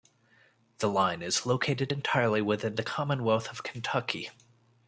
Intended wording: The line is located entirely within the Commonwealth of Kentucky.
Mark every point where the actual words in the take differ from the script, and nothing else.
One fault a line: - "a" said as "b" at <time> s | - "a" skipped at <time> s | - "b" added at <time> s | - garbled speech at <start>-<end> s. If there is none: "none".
none